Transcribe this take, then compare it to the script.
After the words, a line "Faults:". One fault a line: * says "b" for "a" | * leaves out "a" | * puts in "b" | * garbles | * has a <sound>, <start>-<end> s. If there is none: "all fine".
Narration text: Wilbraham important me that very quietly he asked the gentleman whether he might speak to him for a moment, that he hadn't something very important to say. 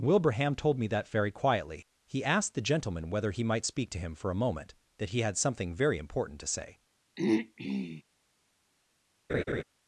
Wilbraham told me that very quietly he asked the gentleman whether he might speak to him for a moment, that he had something very important to say.
Faults:
* says "told" for "important"
* says "had" for "hadn't"
* has a throat clearing, 7.2-8.0 s
* has a laugh, 9.3-9.6 s